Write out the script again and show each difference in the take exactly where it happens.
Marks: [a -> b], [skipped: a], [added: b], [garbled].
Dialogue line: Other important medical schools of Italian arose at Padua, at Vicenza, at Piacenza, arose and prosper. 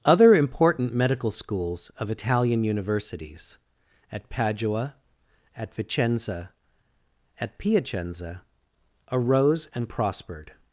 Other important medical schools of Italian [arose -> universities] at Padua, at Vicenza, at Piacenza, arose and [prosper. -> prospered]